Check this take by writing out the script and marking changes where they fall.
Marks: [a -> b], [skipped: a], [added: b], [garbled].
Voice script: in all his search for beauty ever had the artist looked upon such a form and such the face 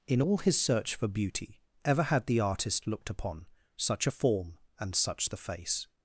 in all his search for beauty ever had the artist looked upon such a form and such the face